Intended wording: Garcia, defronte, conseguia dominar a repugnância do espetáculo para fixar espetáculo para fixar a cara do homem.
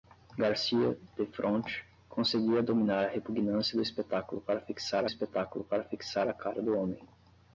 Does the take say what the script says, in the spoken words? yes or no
yes